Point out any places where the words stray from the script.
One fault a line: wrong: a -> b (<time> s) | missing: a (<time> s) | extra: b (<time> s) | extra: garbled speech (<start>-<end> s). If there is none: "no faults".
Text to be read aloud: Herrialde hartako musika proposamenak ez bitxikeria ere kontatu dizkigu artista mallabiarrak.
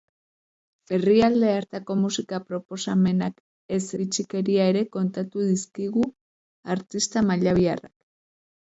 no faults